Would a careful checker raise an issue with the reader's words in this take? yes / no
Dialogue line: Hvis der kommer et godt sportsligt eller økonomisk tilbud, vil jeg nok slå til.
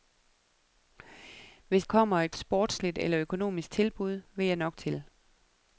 yes